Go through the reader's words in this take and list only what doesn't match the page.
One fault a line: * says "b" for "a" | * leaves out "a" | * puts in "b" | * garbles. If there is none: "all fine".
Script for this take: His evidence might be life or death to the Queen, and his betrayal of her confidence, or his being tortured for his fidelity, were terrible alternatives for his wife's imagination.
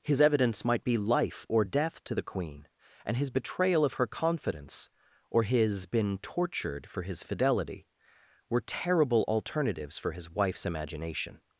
* says "been" for "being"